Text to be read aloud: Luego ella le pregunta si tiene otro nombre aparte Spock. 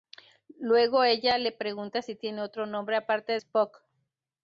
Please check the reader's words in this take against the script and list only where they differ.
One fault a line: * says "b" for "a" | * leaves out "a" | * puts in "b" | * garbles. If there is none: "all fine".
all fine